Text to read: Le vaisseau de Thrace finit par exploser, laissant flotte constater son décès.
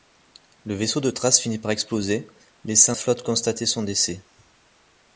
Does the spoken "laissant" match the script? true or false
true